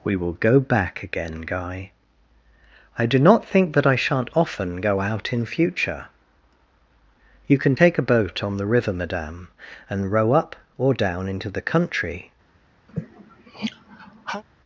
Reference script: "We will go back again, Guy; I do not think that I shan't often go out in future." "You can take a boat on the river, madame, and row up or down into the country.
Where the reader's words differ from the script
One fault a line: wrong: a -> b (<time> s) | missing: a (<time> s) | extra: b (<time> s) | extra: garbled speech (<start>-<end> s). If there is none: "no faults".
no faults